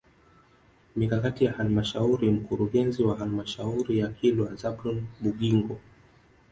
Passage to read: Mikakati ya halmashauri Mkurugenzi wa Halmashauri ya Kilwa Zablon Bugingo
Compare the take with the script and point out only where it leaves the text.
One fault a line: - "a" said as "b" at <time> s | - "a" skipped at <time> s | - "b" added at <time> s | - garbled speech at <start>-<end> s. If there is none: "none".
none